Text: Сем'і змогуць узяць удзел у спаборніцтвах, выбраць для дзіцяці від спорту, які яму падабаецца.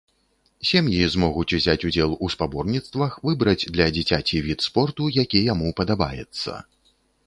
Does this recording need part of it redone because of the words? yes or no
no